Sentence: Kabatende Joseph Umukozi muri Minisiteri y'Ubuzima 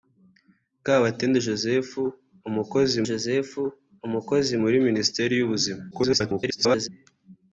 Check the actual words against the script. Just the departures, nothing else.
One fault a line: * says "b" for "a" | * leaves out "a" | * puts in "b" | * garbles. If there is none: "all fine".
* puts in "Joseph Umukozi"
* garbles